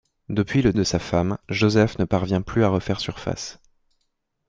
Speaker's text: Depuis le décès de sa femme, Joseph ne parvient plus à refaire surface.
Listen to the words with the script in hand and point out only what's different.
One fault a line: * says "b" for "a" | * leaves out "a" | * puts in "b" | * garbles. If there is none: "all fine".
* leaves out "décès"